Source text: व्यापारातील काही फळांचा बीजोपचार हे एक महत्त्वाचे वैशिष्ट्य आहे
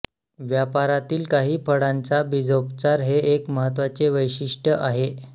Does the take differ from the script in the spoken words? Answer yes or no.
no